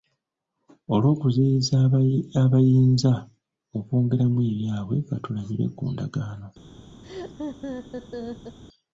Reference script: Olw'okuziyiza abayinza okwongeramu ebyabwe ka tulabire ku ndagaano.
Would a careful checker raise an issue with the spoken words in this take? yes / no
no